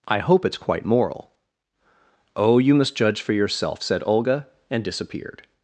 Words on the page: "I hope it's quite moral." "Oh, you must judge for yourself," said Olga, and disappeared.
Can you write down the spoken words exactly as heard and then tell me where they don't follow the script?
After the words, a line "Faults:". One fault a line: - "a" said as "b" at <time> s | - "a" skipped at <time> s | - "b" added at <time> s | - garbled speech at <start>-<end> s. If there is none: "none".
"I hope it's quite moral." "Oh, you must judge for yourself," said Olga, and disappeared.
Faults:
none